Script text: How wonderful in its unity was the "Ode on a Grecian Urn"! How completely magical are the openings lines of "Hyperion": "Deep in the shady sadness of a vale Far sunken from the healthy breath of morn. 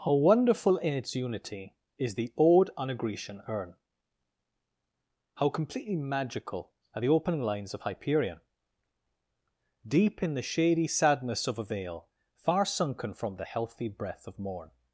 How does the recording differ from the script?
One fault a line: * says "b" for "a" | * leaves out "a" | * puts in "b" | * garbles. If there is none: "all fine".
* says "is" for "was"
* says "opening" for "openings"